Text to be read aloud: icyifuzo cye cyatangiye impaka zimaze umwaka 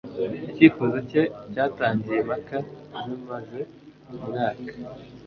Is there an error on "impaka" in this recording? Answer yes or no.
no